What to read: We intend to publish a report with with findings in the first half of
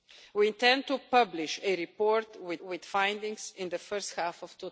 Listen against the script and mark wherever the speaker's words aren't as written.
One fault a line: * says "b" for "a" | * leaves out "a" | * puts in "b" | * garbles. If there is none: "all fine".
all fine